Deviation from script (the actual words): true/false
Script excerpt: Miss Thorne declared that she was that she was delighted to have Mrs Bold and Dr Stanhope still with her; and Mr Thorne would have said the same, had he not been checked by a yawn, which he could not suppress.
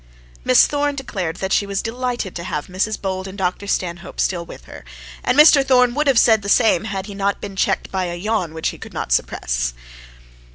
true